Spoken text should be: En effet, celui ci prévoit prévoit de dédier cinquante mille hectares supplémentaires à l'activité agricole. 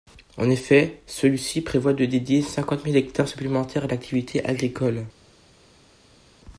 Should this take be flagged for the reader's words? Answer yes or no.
yes